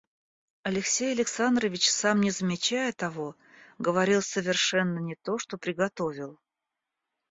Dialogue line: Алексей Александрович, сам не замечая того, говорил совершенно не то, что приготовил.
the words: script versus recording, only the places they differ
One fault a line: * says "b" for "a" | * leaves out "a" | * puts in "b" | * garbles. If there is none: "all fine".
all fine